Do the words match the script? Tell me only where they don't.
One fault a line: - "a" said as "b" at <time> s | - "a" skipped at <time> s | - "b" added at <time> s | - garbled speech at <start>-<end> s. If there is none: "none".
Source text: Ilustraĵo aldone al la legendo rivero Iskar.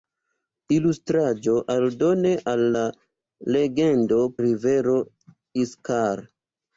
none